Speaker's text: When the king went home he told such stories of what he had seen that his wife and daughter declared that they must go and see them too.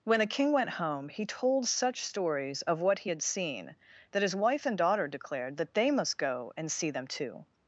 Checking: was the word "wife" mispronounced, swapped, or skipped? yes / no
no